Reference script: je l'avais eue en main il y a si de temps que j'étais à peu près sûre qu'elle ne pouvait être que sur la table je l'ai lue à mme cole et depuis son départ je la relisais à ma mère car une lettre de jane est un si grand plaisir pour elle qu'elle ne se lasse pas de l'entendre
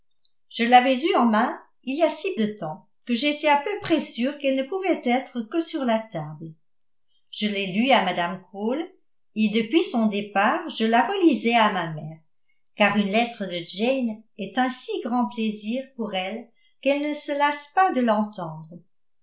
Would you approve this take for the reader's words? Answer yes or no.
yes